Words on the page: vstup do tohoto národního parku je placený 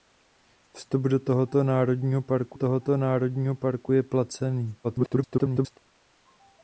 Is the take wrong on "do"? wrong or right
right